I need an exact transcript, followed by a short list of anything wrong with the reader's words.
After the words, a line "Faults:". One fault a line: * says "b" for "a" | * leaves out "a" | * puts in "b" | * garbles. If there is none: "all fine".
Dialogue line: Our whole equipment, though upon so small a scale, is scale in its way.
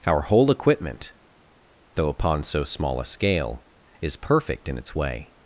Our whole equipment, though upon so small a scale, is perfect in its way.
Faults:
* says "perfect" for "scale"